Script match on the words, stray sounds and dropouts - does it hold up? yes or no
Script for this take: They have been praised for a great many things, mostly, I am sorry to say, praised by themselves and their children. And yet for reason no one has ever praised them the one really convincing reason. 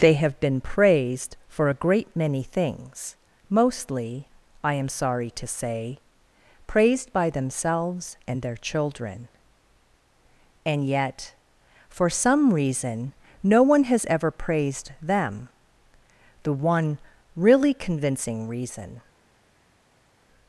no